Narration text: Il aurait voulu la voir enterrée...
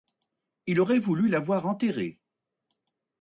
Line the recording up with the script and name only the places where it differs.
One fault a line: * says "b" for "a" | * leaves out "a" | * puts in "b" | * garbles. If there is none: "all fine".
all fine